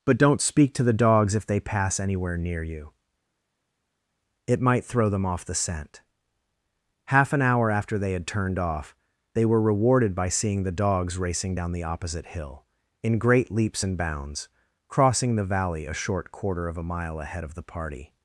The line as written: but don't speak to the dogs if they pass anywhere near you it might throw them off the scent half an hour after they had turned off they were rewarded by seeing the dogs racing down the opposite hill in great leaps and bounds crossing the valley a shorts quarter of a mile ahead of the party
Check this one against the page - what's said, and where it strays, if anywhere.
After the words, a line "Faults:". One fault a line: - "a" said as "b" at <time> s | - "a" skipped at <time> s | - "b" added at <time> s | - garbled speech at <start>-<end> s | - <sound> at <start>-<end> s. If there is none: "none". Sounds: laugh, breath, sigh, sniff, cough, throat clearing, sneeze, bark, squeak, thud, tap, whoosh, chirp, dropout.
but don't speak to the dogs if they pass anywhere near you it might throw them off the scent half an hour after they had turned off they were rewarded by seeing the dogs racing down the opposite hill in great leaps and bounds crossing the valley a short quarter of a mile ahead of the party
Faults:
- "shorts" said as "short" at 15.9 s